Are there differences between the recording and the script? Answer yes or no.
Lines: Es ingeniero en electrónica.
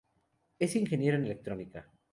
no